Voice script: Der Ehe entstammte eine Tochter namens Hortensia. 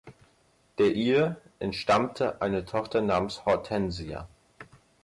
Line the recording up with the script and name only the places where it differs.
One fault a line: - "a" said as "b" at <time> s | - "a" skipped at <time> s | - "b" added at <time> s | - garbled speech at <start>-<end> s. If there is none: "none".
none